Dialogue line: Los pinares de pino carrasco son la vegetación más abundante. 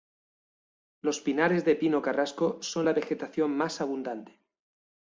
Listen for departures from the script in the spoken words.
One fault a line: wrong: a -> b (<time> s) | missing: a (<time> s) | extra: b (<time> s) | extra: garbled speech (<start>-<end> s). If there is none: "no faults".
no faults